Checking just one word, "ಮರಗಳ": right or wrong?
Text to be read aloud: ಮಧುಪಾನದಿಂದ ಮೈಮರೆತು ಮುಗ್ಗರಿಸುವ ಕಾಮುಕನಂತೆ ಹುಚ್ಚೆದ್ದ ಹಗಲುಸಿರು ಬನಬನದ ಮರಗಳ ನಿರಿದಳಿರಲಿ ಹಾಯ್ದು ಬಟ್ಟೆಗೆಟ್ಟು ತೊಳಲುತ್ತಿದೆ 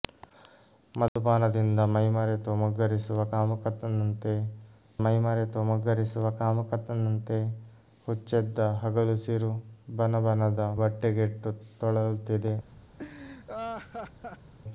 wrong